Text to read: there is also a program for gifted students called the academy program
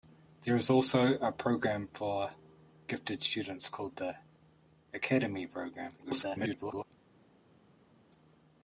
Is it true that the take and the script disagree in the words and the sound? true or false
true